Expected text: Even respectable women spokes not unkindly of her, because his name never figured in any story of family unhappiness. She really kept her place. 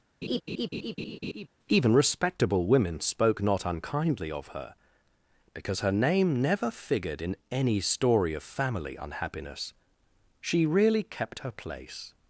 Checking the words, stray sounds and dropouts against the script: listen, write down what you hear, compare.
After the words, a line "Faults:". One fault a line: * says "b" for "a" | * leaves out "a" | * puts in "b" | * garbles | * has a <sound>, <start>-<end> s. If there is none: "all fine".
Even respectable women spoke not unkindly of her, because her name never figured in any story of family unhappiness. She really kept her place.
Faults:
* has a laugh, 0.2-1.5 s
* says "spoke" for "spokes"
* says "her" for "his"